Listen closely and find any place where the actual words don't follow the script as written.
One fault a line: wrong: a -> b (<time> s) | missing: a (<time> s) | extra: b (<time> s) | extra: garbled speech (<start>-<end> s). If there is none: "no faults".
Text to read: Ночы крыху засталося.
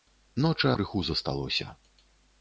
no faults